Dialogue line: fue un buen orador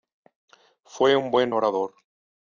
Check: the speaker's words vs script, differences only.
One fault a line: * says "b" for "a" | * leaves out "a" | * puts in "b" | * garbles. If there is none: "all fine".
all fine